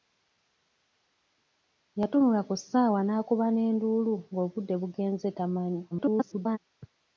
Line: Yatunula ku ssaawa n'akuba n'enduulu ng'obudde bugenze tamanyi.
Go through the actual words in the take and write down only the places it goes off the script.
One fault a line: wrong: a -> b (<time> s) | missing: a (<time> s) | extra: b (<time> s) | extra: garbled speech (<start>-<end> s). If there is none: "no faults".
extra: garbled speech (5.9-6.6 s)